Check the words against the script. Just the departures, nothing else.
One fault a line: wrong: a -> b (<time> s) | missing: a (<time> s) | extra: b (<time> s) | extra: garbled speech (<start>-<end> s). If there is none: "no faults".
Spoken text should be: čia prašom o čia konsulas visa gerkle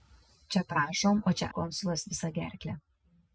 no faults